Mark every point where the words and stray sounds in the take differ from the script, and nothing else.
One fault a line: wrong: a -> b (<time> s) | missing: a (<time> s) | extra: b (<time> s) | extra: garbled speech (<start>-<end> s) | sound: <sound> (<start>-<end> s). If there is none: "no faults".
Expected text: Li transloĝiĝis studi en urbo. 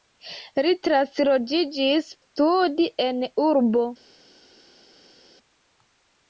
no faults